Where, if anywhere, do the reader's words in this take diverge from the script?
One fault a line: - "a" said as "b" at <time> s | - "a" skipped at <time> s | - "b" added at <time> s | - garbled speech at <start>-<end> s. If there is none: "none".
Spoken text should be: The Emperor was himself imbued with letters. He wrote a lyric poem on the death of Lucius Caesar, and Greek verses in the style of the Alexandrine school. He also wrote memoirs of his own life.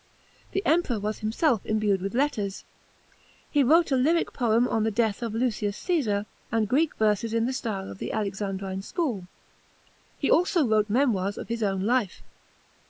none